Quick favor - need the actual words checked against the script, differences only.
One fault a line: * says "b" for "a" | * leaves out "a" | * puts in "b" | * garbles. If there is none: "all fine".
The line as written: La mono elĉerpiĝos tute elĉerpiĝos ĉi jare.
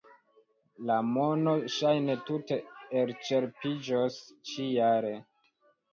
* says "ŝajne" for "elĉerpiĝos"